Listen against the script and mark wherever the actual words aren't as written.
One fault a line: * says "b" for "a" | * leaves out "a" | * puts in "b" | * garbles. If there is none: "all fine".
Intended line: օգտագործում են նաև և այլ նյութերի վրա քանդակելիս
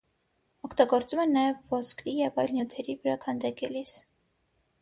* puts in "ոսկրի"